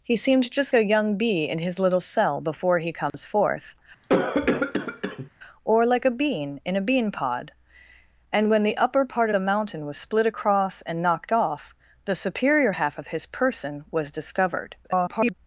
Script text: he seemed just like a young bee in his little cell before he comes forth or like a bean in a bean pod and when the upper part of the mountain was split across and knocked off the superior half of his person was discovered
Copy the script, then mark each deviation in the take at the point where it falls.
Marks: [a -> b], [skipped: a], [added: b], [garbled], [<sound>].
he seemed just [skipped: like] a young bee in his little cell before he comes [dropout] forth [cough] or like a bean in a bean pod and when the upper part [skipped: of] the mountain was split across and knocked off the superior half of his person was discovered [garbled]